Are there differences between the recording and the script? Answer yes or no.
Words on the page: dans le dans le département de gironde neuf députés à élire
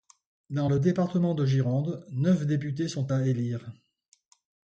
yes